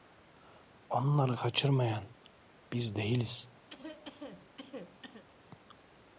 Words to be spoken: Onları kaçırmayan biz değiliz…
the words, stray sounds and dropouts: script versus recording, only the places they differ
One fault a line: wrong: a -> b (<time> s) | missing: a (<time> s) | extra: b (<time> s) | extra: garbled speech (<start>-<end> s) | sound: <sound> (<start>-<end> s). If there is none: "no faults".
sound: cough (3.7-5.2 s)